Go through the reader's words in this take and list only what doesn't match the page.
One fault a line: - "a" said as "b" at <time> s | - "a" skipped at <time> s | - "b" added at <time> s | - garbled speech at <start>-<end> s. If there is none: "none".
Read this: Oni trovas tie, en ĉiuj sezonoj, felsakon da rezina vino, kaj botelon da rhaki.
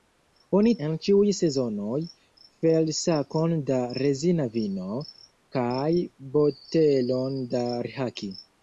- "trovas tie" skipped at 0.7 s